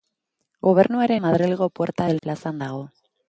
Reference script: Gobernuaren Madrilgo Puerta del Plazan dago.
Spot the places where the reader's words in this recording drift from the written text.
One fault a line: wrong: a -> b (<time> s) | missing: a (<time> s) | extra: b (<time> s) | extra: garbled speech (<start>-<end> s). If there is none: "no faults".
no faults